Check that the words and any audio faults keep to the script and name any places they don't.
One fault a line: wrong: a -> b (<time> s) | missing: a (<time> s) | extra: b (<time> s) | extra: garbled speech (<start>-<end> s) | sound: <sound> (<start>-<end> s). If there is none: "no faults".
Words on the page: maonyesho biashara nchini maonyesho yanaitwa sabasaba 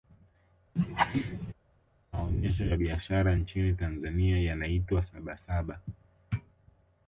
sound: laugh (0.8-1.5 s)
extra: ya (2.6 s)
wrong: maonyesho -> tanzania (3.7 s)